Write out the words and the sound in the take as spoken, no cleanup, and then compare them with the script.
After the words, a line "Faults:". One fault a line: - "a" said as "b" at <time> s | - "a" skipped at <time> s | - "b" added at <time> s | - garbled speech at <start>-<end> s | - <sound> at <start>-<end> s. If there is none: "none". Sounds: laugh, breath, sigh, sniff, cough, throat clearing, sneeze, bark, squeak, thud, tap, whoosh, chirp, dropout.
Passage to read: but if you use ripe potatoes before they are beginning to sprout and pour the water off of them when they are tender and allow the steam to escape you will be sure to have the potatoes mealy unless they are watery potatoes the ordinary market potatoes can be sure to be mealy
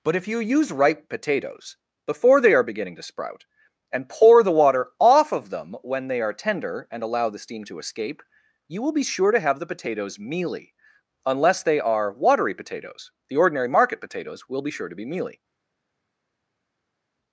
but if you use ripe potatoes before they are beginning to sprout and pour the water off of them when they are tender and allow the steam to escape you will be sure to have the potatoes mealy unless they are watery potatoes the ordinary market potatoes will be sure to be mealy
Faults:
- "can" said as "will" at 14.5 s